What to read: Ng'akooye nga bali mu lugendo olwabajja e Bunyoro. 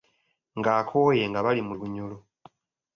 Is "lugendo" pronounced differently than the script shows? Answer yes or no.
yes